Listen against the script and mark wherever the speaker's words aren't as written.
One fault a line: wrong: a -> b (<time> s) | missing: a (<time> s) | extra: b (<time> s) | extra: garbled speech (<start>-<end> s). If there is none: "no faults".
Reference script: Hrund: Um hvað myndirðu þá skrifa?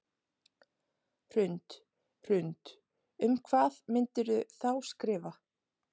extra: hrund (2.3 s)